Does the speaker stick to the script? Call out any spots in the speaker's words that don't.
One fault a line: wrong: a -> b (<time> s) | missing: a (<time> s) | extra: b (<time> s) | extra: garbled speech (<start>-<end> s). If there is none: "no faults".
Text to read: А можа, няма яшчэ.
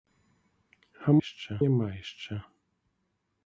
wrong: можа -> яшчэ (1.2 s)